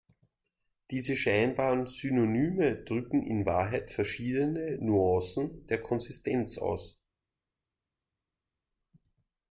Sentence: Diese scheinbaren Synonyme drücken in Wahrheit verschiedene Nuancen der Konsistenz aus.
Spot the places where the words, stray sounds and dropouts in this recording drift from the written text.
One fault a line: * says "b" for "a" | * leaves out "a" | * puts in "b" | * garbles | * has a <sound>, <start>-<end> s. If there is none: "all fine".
all fine